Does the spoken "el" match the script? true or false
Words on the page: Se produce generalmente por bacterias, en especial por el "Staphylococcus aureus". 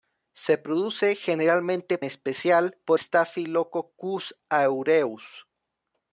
false